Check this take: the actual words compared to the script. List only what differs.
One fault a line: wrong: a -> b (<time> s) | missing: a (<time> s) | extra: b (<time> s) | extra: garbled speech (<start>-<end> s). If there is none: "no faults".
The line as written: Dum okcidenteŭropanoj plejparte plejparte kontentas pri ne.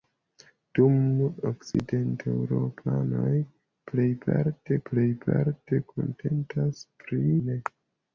no faults